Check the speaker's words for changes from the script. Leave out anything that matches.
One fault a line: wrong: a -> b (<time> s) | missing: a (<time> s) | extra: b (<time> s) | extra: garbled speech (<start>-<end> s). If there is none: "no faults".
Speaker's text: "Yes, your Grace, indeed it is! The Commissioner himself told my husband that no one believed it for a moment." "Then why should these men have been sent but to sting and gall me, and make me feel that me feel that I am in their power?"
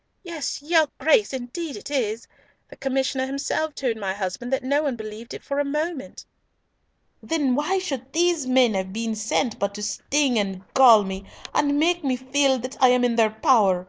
missing: me feel that (12.8 s)